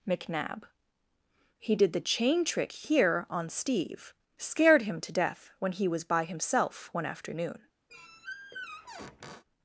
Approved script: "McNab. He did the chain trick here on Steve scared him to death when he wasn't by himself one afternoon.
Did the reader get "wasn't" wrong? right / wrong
wrong